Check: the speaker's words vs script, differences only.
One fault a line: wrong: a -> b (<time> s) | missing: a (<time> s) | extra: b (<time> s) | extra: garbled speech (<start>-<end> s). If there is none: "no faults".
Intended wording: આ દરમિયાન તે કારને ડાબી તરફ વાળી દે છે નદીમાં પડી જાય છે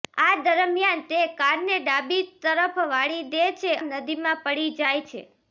no faults